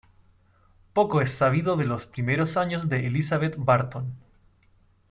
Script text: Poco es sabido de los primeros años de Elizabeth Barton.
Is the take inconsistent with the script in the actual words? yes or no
no